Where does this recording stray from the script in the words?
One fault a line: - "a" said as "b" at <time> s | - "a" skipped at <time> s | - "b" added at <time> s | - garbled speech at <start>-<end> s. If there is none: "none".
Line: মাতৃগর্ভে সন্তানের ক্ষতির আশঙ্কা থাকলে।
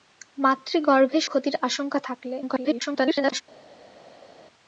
- "সন্তানের" skipped at 1.2 s
- garbled speech at 2.4-3.4 s